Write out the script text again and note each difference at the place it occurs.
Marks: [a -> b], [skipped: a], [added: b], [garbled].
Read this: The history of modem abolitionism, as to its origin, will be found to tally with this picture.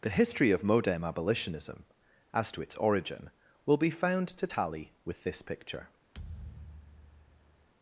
The history of modem abolitionism, as to its origin, will be found to tally with this picture.